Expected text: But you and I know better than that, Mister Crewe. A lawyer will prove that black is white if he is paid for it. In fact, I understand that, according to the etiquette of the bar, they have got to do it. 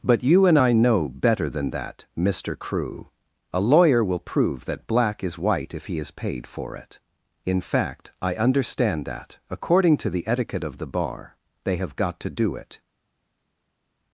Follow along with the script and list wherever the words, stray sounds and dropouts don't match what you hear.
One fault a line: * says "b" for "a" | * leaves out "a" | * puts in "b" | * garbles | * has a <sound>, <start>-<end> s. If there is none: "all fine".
all fine